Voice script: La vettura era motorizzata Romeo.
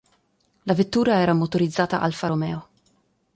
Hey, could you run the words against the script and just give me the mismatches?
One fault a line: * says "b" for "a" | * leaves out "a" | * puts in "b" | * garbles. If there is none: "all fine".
* puts in "Alfa"